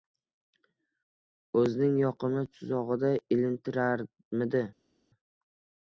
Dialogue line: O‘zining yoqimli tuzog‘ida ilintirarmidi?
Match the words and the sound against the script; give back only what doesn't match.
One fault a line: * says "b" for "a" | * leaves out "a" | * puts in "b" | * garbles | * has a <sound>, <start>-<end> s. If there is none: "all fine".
all fine